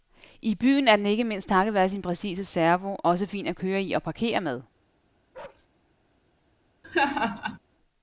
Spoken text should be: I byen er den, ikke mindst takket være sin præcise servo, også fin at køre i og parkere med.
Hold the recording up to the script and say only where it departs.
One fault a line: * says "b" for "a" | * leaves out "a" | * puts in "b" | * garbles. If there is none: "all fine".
all fine